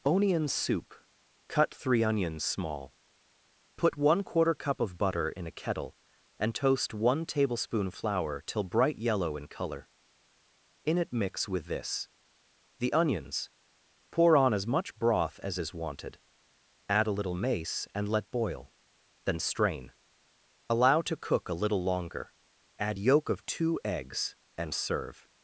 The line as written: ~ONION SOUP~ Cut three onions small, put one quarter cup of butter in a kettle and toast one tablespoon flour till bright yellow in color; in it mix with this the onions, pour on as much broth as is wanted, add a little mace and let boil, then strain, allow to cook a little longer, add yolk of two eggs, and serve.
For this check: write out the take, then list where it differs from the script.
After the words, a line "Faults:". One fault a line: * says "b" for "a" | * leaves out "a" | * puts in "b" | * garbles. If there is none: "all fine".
~ONION SOUP~ Cut three onions small, put one quarter cup of butter in a kettle and toast one tablespoon flour till bright yellow in color; in it mix with this the onions, pour on as much broth as is wanted, add a little mace and let boil, then strain, allow to cook a little longer, add yolk of two eggs, and serve.
Faults:
all fine